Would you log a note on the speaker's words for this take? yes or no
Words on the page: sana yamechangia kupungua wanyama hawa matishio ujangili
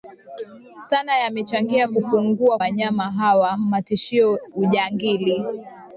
no